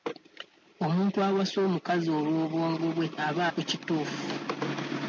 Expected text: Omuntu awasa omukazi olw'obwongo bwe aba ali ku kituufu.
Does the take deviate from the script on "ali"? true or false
true